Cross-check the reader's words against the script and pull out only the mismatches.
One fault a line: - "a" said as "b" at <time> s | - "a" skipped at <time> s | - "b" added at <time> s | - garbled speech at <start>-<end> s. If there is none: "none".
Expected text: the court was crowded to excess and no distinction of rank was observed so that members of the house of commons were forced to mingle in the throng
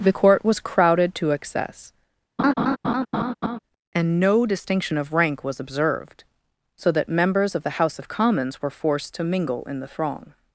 none